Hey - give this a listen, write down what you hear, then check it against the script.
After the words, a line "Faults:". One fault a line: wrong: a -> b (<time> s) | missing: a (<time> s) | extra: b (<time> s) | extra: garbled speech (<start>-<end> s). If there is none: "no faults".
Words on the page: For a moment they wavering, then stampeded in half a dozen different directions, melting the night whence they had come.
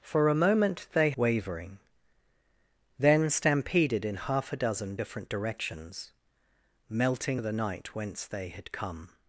For a moment they wavering, then stampeded in half a dozen different directions, melting the night whence they had come.
Faults:
no faults